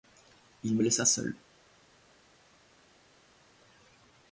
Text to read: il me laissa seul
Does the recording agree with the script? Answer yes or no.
yes